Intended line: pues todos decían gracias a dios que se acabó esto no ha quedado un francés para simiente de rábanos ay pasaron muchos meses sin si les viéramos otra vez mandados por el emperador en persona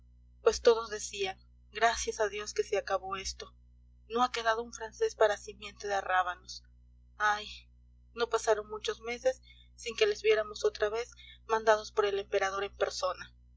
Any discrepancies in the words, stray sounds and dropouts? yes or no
yes